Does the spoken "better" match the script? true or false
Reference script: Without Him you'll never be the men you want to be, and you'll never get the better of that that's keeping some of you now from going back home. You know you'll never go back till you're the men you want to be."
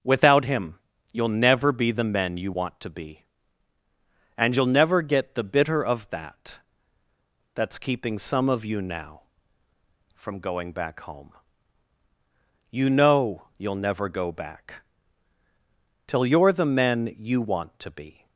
false